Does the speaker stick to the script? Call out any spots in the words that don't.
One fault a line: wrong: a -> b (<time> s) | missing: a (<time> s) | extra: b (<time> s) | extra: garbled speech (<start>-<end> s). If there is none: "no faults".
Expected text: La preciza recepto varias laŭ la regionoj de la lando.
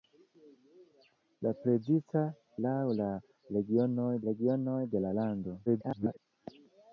missing: recepto varias (2.2 s)
extra: regionoj (4.3 s)
extra: garbled speech (5.7-6.2 s)